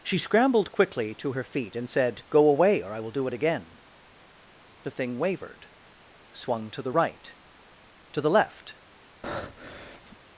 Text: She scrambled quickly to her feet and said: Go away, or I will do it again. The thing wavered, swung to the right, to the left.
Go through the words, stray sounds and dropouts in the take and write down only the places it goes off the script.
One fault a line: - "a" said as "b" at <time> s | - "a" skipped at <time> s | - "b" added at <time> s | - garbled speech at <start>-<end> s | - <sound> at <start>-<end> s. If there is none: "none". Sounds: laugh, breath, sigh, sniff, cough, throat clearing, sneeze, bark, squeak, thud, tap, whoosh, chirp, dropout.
- breath at 9.2-10.2 s